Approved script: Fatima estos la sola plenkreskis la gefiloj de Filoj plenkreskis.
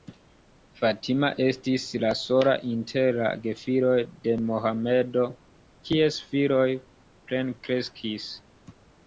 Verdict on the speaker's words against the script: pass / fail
fail